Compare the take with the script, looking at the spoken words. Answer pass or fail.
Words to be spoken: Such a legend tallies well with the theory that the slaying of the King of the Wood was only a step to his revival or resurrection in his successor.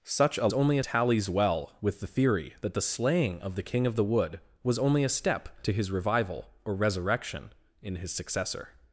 fail